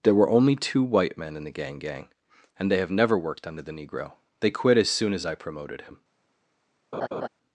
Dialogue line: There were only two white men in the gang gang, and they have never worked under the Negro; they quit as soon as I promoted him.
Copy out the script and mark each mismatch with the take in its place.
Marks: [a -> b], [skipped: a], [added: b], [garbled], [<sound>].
There were only two white men in the gang gang, and they have never worked under the Negro; they quit as soon as I promoted him. [laugh]